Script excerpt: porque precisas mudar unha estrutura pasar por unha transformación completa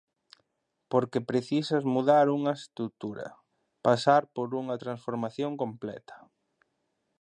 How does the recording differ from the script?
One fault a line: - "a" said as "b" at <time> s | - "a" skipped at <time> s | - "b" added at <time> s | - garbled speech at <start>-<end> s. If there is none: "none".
none